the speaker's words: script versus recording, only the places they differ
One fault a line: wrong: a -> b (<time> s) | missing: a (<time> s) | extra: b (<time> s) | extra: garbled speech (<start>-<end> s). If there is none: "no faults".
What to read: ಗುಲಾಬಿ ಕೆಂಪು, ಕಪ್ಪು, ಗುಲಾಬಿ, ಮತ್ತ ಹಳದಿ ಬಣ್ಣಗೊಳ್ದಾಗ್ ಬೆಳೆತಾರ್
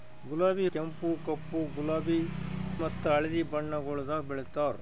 no faults